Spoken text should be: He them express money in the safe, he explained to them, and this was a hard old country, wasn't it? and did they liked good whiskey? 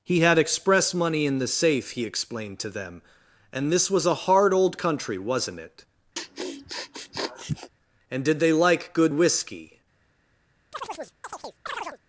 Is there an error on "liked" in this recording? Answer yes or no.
yes